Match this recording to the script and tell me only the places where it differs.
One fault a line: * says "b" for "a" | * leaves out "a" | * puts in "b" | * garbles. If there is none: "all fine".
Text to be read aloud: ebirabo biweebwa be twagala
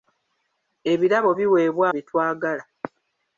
all fine